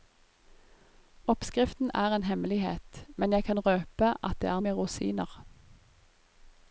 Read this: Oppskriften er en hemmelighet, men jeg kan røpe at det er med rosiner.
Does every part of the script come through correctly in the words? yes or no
yes